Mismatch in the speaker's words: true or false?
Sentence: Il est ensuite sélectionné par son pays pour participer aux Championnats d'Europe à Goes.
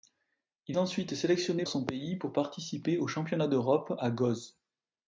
true